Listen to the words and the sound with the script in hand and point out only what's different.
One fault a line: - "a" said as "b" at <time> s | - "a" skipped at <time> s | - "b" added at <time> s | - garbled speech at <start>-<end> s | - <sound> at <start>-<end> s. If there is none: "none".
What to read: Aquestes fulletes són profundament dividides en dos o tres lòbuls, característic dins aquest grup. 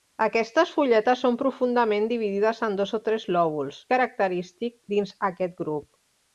none